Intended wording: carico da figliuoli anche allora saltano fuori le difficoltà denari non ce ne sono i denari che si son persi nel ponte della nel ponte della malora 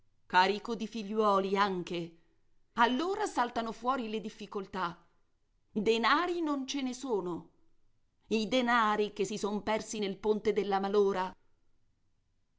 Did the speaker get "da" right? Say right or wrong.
wrong